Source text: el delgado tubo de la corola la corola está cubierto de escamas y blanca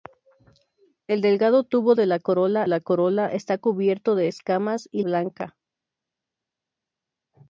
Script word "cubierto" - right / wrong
right